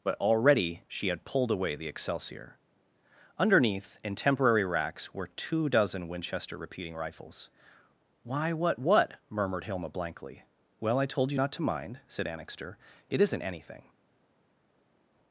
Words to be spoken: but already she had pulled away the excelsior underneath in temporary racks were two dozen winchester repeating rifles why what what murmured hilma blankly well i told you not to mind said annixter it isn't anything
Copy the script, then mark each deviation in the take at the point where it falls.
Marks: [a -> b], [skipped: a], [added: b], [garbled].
but already she had pulled away the excelsior underneath in temporary racks were two dozen winchester repeating rifles why what what murmured hilma blankly well i told you not to mind said annixter it isn't anything